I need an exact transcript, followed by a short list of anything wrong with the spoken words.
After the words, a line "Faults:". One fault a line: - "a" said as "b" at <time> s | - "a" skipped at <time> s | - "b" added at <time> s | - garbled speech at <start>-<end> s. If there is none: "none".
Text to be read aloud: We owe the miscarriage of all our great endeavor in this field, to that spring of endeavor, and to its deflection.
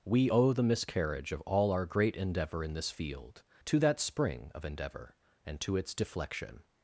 We owe the miscarriage of all our great endeavor in this field, to that spring of endeavor, and to its deflection.
Faults:
none